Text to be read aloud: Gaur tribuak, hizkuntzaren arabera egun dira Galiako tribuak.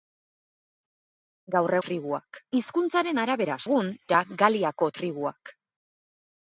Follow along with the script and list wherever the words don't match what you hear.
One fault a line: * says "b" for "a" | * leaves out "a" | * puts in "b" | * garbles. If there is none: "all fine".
all fine